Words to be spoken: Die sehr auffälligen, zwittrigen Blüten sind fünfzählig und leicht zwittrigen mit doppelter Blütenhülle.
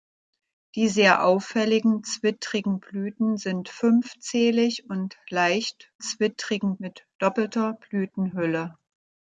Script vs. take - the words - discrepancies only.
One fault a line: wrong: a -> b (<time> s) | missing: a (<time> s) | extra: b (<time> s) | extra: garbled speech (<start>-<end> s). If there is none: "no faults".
no faults